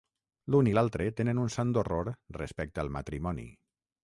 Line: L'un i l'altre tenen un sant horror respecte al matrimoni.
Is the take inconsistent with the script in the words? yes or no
no